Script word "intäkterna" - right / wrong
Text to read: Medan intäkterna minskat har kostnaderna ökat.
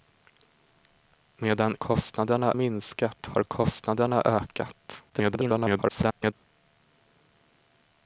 wrong